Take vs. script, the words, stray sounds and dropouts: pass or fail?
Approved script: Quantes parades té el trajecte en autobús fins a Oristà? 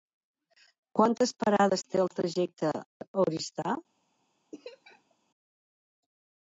fail